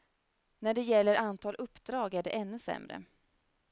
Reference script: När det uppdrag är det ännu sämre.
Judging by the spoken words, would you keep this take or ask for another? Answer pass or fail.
fail